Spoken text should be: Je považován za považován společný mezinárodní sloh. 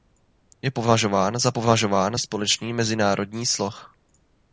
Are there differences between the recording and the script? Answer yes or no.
no